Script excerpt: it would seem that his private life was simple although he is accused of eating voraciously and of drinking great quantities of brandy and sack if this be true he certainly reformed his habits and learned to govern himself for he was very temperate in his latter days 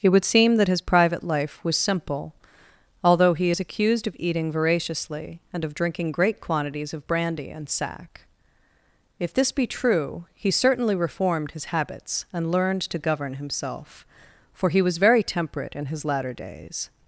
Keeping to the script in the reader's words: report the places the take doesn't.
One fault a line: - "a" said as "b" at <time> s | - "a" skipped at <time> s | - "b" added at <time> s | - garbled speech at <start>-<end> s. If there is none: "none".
none